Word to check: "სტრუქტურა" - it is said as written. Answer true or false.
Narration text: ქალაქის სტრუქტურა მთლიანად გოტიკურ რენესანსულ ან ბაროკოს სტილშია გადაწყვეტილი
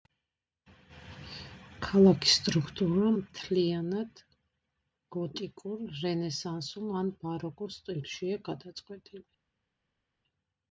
true